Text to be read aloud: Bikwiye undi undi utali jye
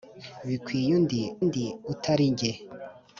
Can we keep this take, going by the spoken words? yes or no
yes